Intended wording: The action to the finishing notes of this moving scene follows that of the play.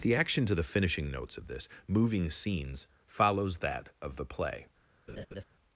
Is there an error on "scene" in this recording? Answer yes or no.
yes